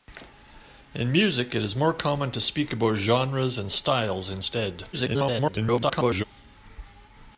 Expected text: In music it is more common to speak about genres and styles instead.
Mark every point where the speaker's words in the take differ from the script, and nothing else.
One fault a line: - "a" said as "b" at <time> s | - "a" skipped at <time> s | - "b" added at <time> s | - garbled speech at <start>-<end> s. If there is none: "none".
- garbled speech at 4.9-6.2 s